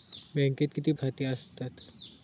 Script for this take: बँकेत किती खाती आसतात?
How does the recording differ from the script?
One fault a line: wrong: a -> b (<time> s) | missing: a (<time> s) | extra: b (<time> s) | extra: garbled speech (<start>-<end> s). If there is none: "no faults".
no faults